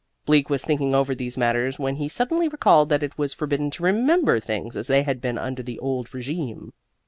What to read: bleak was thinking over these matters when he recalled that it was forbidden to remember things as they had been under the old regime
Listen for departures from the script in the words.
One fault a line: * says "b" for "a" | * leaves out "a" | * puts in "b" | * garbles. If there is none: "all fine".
* puts in "suddenly"